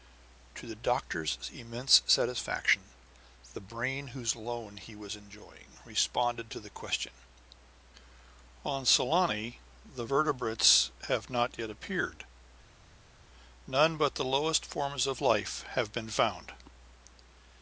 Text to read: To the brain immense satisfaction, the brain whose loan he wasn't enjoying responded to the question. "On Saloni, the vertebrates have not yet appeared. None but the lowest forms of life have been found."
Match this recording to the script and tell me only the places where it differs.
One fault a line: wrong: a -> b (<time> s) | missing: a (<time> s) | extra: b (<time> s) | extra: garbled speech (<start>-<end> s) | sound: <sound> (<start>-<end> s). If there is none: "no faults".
wrong: brain -> doctor's (0.8 s)
wrong: wasn't -> was (5.0 s)